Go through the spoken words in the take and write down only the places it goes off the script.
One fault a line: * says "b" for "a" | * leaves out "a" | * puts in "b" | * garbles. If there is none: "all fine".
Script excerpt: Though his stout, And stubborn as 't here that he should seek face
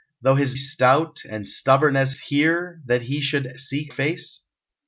all fine